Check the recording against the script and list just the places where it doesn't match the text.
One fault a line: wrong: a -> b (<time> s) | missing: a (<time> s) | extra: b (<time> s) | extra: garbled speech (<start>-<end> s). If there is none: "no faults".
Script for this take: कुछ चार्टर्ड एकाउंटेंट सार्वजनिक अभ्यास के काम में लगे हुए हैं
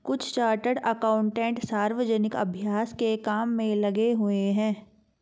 no faults